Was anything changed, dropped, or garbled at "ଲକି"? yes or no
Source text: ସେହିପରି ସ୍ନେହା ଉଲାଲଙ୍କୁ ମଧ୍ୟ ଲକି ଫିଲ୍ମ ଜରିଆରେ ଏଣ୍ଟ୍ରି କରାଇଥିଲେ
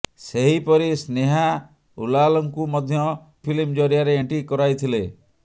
yes